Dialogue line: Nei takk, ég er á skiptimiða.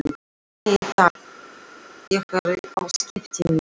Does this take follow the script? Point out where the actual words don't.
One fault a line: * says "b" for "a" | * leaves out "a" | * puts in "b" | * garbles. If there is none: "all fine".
all fine